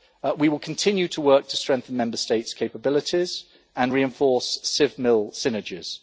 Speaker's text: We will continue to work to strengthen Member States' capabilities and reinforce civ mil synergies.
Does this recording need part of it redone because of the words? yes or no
no